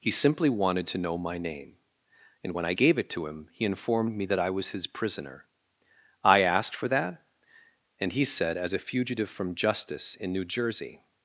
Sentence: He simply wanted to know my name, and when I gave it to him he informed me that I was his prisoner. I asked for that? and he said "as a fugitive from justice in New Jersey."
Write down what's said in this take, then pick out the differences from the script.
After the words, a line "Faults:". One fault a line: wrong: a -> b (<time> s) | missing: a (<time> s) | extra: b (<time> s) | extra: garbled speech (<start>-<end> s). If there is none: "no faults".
He simply wanted to know my name, and when I gave it to him he informed me that I was his prisoner. I asked for that? and he said "as a fugitive from justice in New Jersey."
Faults:
no faults